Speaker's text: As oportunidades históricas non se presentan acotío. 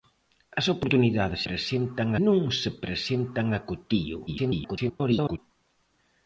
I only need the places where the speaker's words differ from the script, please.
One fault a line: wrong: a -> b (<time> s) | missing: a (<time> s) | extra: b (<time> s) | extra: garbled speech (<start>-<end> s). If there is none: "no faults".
wrong: históricas -> presentan (1.5 s)
extra: garbled speech (4.3-5.4 s)